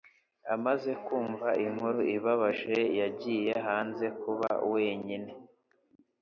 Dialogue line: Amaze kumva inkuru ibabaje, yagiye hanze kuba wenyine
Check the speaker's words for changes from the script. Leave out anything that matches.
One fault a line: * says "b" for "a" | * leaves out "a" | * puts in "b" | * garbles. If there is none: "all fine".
all fine